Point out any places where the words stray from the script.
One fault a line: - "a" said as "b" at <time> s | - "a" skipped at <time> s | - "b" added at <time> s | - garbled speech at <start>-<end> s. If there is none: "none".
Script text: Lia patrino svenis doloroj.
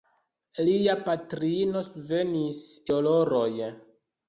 none